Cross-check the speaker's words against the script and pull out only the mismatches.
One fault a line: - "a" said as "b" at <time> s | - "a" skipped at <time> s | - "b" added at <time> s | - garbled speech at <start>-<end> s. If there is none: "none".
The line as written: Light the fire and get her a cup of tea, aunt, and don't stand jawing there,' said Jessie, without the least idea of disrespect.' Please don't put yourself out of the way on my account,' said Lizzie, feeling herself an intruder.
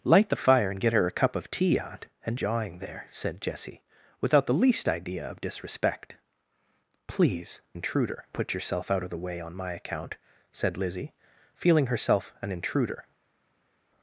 - "don't stand" skipped at 2.4 s
- "don't" said as "intruder" at 7.7 s